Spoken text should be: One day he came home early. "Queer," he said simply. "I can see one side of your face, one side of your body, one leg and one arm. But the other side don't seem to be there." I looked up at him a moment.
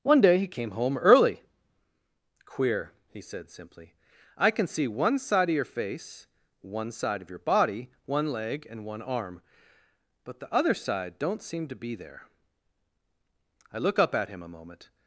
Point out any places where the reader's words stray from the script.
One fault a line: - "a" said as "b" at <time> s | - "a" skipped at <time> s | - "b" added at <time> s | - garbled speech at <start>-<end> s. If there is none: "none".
- "looked" said as "look" at 13.8 s